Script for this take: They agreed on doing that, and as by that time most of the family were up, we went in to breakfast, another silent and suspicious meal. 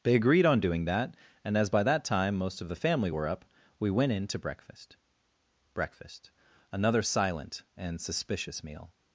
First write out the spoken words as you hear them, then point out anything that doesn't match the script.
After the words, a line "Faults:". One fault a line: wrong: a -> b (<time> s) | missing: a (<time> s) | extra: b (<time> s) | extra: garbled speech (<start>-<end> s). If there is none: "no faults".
They agreed on doing that, and as by that time most of the family were up, we went in to breakfast breakfast, another silent and suspicious meal.
Faults:
extra: breakfast (5.7 s)